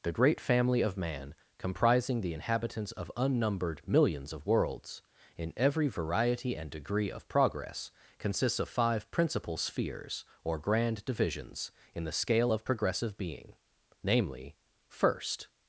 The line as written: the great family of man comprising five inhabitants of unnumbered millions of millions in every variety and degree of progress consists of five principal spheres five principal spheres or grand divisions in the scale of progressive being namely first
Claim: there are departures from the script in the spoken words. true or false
true